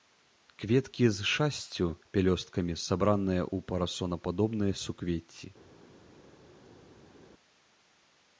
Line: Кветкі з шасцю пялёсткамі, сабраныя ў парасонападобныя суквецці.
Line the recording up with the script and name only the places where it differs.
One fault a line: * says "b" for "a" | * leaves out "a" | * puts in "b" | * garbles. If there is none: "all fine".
all fine